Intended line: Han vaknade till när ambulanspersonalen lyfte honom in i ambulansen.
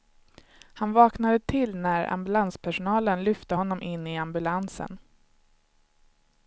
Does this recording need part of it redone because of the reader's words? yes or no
no